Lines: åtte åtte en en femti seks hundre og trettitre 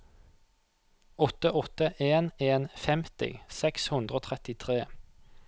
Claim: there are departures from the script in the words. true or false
false